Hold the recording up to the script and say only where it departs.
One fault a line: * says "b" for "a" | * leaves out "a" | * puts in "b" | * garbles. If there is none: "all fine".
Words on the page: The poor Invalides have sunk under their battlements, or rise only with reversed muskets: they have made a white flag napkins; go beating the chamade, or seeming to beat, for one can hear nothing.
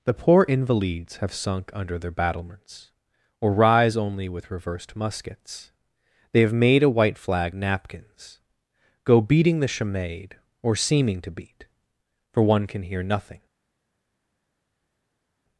all fine